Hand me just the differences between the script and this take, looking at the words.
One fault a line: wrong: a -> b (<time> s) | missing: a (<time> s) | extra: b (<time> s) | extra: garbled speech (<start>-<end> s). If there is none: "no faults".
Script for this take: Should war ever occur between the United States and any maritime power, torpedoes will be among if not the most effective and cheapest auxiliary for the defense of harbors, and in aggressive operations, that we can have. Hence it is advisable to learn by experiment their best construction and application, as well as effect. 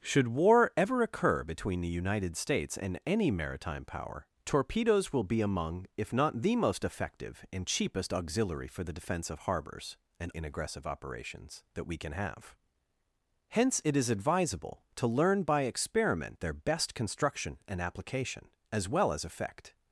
no faults